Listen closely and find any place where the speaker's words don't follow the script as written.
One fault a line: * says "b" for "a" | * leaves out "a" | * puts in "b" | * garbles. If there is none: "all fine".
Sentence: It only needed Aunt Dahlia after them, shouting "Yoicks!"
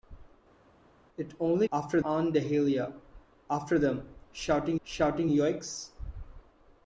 * says "after" for "needed"
* puts in "shouting"